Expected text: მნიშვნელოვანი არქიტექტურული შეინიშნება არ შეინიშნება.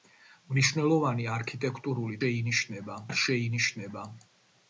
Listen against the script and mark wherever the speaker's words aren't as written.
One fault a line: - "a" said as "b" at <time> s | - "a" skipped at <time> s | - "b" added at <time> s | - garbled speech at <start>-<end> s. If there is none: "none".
none